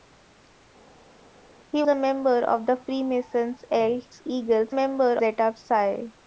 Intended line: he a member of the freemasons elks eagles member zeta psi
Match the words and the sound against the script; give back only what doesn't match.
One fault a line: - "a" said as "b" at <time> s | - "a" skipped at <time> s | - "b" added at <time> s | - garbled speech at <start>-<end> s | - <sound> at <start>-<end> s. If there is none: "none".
none